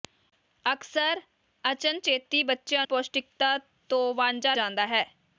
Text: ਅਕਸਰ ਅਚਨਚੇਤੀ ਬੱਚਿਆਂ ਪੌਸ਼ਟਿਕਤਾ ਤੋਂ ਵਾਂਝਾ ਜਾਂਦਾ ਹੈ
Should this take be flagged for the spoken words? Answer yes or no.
no